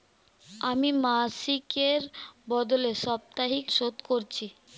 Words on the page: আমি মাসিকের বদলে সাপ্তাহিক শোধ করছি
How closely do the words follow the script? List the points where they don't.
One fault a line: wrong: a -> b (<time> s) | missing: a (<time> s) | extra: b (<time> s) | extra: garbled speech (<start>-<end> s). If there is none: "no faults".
no faults